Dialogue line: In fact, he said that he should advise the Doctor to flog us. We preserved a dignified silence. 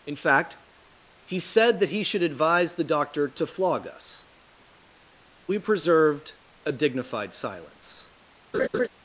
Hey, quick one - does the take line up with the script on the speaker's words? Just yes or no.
yes